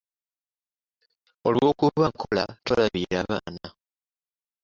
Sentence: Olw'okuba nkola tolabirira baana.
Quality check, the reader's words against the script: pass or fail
pass